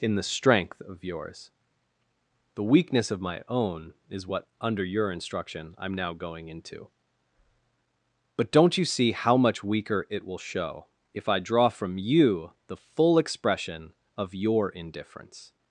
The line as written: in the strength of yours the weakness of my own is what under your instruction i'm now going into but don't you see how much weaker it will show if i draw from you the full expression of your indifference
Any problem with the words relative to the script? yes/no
no